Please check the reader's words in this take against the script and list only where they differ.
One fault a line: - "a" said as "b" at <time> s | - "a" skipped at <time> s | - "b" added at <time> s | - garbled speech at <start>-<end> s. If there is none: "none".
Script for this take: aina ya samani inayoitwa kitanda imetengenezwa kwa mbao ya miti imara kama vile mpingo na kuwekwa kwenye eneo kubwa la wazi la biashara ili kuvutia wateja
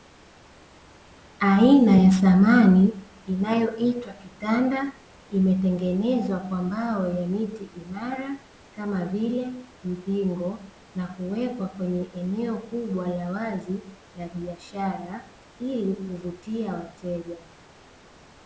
none